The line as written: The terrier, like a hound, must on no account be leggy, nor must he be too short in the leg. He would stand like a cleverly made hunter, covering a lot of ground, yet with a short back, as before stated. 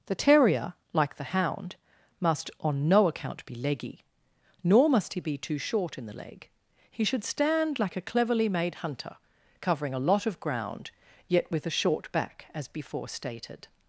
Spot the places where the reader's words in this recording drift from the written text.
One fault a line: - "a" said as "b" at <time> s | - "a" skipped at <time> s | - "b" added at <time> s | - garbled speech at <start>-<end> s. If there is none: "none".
- "a" said as "the" at 1.2 s
- "would" said as "should" at 7.0 s